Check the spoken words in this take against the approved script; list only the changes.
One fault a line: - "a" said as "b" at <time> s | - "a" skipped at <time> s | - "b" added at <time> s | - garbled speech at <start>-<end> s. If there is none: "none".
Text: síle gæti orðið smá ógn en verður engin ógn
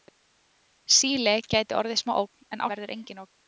none